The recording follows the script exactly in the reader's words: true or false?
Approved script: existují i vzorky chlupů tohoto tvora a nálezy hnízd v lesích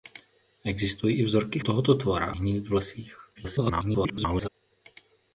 false